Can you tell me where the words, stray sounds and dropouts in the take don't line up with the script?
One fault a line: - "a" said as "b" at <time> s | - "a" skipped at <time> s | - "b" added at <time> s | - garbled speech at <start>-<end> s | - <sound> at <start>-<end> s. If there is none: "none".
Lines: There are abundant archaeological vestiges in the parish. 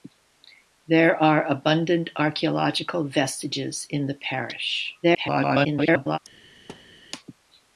- garbled speech at 5.0-6.2 s
- thud at 6.7-7.0 s